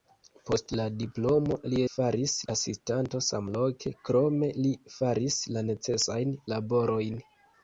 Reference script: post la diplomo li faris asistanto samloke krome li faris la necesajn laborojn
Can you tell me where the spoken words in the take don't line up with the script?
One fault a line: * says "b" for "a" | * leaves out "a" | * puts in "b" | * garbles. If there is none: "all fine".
all fine